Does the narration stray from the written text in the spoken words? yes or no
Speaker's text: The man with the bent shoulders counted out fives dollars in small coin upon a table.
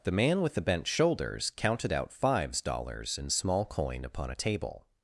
no